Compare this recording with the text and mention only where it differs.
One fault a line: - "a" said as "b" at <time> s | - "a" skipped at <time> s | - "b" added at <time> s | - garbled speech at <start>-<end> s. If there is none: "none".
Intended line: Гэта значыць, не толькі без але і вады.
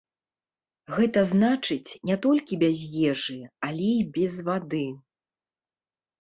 - "ежы" added at 3.1 s
- "без" added at 4.2 s